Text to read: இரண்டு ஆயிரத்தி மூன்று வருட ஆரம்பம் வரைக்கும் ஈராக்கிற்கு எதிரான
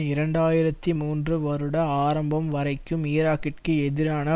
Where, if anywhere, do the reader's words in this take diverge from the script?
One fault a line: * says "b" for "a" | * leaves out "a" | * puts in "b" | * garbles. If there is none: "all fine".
all fine